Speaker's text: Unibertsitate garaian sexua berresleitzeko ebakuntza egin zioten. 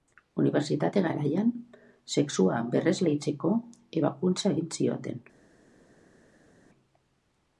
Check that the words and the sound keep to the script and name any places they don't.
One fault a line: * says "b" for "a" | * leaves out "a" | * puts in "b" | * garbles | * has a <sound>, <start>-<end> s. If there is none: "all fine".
all fine